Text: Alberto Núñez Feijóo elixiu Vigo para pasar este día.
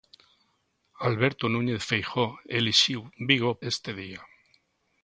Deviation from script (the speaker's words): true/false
true